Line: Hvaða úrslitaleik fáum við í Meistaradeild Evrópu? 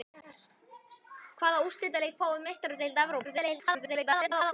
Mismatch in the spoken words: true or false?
true